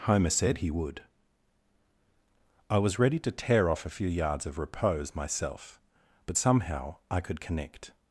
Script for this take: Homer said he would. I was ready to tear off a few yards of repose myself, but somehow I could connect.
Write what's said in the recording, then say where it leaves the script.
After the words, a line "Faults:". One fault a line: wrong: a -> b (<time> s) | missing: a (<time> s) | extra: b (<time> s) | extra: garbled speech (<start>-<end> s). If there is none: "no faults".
Homer said he would. I was ready to tear off a few yards of repose myself, but somehow I could connect.
Faults:
no faults